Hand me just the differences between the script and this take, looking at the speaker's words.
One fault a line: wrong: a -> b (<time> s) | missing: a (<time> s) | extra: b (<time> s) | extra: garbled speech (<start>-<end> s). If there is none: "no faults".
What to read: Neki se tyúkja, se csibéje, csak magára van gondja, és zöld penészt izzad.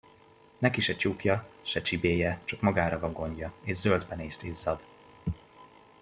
no faults